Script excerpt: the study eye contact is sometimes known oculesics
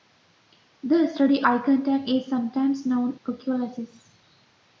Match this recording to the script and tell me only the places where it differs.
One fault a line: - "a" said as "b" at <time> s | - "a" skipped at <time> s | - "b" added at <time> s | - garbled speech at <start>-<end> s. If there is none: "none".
none